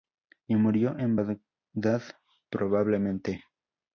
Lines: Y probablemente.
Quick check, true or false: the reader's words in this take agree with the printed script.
false